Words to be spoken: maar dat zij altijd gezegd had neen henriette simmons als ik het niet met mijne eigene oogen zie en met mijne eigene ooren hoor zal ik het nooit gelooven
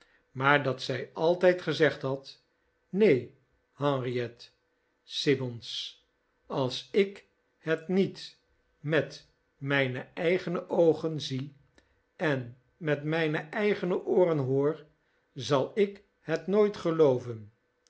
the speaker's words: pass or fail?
pass